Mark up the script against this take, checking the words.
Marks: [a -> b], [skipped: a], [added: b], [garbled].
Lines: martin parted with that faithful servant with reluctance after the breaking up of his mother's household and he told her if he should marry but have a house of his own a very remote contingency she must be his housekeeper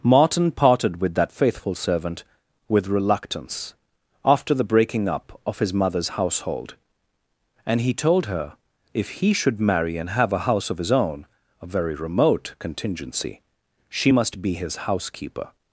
martin parted with that faithful servant with reluctance after the breaking up of his mother's household and he told her if he should marry [but -> and] have a house of his own a very remote contingency she must be his housekeeper